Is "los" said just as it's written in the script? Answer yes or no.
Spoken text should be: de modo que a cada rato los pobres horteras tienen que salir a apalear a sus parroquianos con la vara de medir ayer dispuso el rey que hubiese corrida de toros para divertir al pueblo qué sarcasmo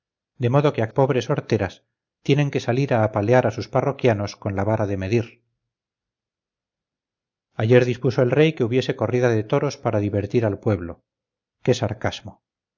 no